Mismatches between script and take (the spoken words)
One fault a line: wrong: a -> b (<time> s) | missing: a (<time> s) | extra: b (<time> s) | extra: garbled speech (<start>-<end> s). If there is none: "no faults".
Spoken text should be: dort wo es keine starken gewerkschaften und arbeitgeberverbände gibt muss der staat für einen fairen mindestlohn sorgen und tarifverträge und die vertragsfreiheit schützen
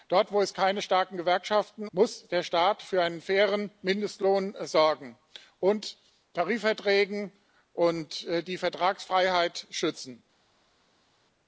missing: und arbeitgeberverbände gibt (1.9 s)